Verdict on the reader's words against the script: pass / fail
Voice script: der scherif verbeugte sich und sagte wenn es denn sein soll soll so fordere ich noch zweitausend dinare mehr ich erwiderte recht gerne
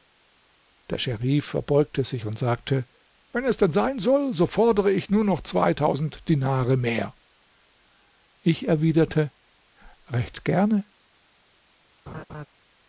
fail